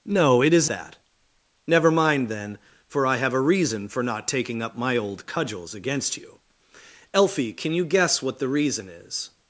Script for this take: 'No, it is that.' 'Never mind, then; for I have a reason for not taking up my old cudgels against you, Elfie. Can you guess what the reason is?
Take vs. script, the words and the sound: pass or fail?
pass